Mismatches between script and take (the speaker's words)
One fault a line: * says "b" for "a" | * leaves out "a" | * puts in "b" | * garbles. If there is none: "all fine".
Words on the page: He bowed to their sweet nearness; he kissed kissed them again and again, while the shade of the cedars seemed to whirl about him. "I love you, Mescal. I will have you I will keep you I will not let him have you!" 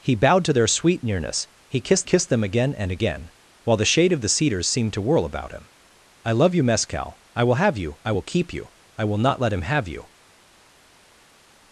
all fine